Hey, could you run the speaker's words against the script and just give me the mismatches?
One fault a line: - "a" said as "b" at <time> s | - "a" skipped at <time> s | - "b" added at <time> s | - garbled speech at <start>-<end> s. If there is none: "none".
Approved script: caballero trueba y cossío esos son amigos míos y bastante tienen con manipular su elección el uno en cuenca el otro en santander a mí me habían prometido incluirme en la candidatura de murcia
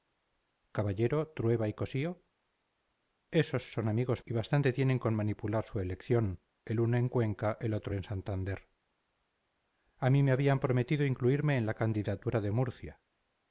- "míos" skipped at 4.2 s